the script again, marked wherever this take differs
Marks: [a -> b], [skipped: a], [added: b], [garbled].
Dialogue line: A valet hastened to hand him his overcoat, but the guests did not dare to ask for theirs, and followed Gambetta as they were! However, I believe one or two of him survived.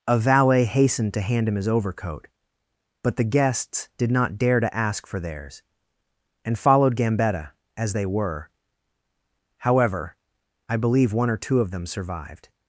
A valet hastened to hand him his overcoat, but the guests did not dare to ask for theirs, and followed Gambetta as they were! However, I believe one or two of [him -> them] survived.